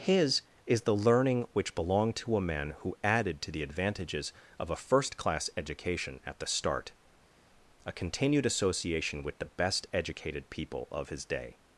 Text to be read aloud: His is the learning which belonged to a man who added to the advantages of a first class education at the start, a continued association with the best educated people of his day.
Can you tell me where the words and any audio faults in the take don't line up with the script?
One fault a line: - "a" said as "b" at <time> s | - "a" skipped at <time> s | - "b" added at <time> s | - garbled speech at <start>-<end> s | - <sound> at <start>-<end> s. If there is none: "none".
none